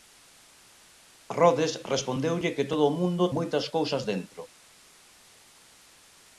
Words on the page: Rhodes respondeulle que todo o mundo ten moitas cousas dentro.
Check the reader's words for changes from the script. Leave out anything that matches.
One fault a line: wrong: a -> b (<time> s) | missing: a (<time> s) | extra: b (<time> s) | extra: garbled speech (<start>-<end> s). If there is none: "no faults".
missing: ten (3.2 s)